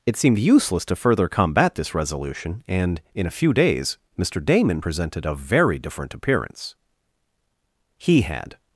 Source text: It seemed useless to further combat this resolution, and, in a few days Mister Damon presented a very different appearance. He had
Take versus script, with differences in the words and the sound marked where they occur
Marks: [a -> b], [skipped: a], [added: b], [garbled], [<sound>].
It seemed useless to further combat this resolution, and, in a few days Mister Damon presented a very different appearance. He had